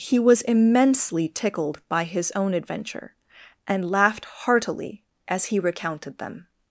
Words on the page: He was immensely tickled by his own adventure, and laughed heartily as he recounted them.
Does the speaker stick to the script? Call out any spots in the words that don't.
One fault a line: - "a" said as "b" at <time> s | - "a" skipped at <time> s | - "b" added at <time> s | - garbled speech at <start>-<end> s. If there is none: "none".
none